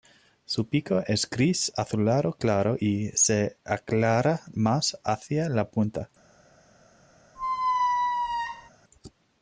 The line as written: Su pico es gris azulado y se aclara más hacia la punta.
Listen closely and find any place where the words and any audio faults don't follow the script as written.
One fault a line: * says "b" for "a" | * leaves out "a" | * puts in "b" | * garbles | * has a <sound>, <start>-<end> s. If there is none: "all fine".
* puts in "claro"
* has a squeak, 7.4-8.7 s